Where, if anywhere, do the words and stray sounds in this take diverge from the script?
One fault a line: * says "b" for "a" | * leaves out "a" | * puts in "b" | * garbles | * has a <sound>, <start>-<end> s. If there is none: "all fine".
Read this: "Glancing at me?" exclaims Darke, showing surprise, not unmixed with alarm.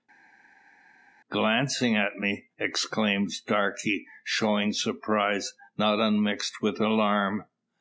all fine